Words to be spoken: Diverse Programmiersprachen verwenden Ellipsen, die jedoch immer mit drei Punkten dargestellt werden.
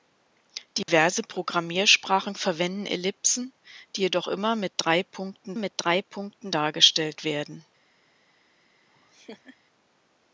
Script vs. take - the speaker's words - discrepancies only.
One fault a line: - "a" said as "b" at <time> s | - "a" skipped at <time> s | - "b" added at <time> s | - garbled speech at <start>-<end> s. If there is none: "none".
- "mit drei Punkten" added at 5.6 s